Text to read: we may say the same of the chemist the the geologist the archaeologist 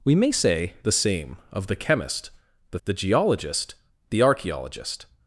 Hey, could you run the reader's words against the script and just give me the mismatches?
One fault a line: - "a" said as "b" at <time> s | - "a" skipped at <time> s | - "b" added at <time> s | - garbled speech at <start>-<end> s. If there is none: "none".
none